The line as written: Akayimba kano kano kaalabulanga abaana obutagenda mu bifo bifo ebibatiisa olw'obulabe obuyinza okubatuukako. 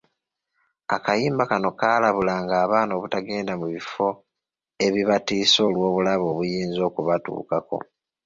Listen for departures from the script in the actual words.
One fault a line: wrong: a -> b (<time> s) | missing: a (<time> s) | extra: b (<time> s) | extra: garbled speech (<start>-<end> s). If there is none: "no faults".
missing: kano (1.7 s)
missing: bifo (4.1 s)